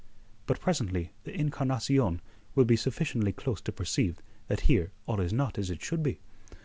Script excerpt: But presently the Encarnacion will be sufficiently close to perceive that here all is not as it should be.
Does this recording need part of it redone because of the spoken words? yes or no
no